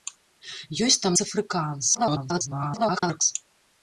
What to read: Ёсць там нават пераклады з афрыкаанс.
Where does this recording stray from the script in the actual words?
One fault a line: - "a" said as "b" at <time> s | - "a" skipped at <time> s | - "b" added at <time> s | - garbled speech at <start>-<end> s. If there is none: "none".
- "нават пераклады" skipped at 1.1 s
- garbled speech at 1.9-3.2 s